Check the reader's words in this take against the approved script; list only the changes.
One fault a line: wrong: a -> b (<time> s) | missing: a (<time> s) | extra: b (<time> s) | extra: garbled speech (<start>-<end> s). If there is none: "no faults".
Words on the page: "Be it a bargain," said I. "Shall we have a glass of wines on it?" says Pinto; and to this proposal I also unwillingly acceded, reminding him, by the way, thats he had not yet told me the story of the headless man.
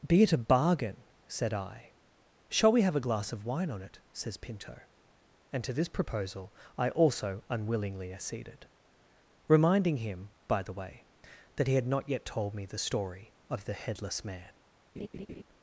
wrong: wines -> wine (3.5 s)
wrong: thats -> that (11.6 s)